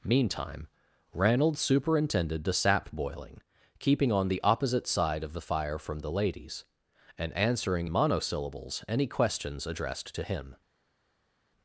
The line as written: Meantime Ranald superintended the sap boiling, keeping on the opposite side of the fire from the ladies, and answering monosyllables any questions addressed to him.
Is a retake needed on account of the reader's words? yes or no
no